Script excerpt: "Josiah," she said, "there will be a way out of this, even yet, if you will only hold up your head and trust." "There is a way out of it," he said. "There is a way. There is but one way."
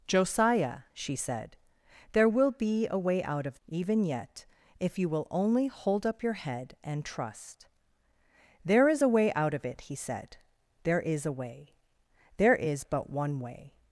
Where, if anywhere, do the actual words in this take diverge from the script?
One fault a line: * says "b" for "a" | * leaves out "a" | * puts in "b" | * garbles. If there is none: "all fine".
* leaves out "this"